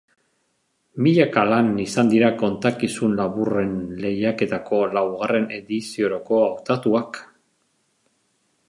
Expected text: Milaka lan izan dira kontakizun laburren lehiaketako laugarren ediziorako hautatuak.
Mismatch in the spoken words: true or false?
false